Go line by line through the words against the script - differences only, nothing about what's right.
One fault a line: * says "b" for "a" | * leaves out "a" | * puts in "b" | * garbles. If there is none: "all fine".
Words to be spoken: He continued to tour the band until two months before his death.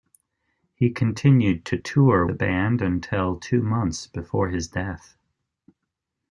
all fine